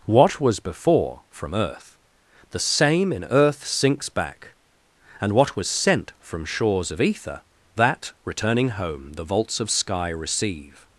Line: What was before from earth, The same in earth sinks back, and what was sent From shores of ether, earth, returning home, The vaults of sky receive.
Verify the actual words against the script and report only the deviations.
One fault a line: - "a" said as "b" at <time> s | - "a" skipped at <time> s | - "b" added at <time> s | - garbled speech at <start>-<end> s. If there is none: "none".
- "earth" said as "that" at 7.8 s